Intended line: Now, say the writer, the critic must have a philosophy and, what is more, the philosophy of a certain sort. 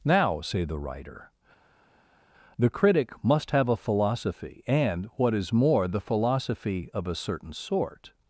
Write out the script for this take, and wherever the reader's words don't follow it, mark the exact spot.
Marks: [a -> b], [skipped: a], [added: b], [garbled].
Now, say the writer, the critic must have a philosophy and, what is more, the philosophy of a certain sort.